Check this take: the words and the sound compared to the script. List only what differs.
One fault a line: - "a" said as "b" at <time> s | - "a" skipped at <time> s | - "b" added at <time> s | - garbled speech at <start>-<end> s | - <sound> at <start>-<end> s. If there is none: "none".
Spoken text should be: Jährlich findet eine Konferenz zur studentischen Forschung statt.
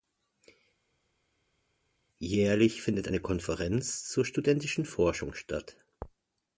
none